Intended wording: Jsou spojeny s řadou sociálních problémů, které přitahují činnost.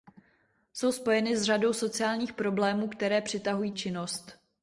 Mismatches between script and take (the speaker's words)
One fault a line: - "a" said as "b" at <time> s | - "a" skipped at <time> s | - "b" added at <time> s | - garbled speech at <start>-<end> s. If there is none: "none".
none